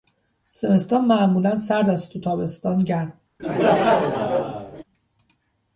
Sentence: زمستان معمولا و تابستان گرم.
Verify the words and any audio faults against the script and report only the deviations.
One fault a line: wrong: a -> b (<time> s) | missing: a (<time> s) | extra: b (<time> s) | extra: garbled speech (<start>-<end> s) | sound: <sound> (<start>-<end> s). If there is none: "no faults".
extra: سرد است (1.6 s)
sound: laugh (3.4-4.8 s)